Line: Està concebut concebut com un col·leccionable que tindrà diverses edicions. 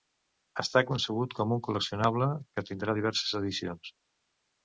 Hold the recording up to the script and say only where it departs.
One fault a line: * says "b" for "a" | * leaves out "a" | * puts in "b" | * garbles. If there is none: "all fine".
* leaves out "concebut"